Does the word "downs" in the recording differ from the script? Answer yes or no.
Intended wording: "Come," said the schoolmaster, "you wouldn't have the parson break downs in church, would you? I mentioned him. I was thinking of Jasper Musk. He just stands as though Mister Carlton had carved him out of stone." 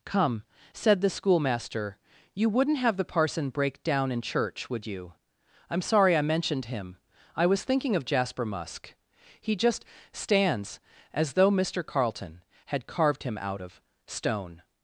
yes